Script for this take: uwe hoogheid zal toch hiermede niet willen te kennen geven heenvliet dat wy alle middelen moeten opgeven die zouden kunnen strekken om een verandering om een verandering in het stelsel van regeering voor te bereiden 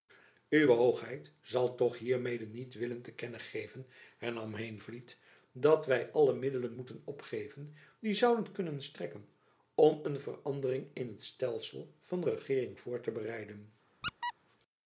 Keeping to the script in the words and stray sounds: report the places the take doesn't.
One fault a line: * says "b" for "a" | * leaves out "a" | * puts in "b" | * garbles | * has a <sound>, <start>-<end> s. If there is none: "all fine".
* puts in "hernam"
* leaves out "om een verandering"
* has a squeak, 14.0-14.3 s